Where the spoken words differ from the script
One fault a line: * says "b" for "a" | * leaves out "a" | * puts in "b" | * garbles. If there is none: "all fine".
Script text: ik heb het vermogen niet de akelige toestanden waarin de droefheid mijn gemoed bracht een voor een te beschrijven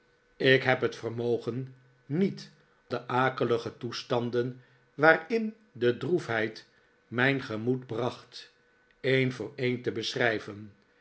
all fine